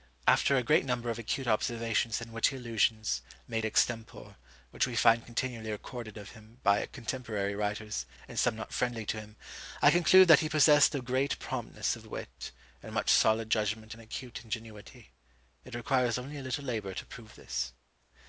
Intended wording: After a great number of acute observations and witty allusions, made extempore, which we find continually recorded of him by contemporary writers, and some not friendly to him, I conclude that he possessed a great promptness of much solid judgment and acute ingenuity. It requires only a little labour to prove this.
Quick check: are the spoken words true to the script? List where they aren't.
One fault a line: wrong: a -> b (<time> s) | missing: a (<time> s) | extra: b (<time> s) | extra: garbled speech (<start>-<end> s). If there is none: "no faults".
extra: wit and (12.1 s)